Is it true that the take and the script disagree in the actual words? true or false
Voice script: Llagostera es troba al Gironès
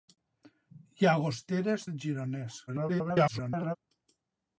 true